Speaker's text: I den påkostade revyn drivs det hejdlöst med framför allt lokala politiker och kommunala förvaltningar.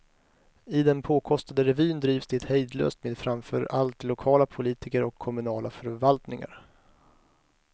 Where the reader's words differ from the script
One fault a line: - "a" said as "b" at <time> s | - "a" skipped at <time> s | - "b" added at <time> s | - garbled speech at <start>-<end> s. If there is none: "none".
none